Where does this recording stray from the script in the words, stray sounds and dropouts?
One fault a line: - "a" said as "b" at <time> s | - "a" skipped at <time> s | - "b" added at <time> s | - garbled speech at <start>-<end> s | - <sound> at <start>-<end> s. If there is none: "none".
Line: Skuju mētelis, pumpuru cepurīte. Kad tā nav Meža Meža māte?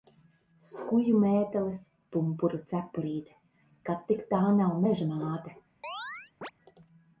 - "tik" added at 4.1 s
- "Meža" skipped at 5.1 s
- chirp at 5.8-6.5 s